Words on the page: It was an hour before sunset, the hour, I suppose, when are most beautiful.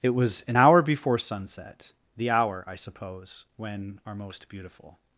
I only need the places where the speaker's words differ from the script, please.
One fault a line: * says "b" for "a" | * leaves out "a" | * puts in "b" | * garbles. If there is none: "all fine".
all fine